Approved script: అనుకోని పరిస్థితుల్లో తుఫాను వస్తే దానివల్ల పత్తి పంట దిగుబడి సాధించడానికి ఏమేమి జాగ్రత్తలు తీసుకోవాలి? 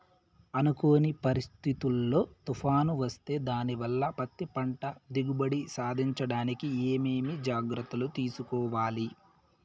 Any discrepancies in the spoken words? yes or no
no